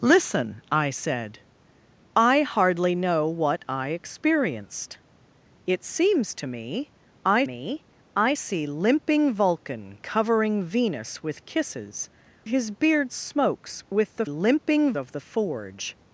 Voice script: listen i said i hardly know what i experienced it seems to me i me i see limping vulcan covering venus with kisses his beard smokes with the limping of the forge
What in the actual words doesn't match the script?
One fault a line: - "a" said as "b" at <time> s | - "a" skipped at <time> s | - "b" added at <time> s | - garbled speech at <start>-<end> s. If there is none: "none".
none